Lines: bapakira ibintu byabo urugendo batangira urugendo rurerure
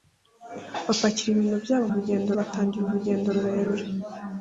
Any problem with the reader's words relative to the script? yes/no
no